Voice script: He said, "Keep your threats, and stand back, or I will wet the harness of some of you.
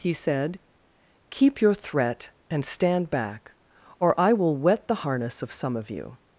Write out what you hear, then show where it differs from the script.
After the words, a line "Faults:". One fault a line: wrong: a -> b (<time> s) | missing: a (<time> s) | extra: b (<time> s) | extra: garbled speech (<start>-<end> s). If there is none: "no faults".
He said, "Keep your threat, and stand back, or I will wet the harness of some of you.
Faults:
wrong: threats -> threat (1.8 s)